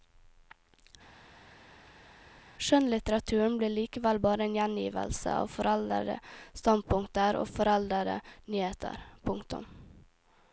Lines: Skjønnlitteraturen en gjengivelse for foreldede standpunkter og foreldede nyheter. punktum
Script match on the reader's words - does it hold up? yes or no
no